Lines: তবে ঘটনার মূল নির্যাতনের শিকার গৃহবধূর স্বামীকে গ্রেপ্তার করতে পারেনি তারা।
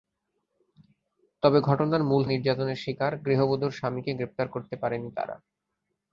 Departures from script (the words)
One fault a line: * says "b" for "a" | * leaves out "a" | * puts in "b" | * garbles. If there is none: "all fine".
all fine